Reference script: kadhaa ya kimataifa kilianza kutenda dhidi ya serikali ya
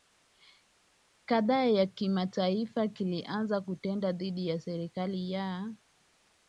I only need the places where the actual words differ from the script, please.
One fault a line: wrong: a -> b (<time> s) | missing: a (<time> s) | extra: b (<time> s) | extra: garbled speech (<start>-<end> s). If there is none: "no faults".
no faults